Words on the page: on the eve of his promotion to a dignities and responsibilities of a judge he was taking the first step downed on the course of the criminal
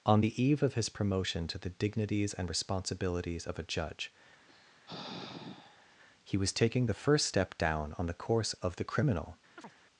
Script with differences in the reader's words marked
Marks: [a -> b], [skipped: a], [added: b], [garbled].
on the eve of his promotion to [a -> the] dignities and responsibilities of a judge he was taking the first step [downed -> down] on the course of the criminal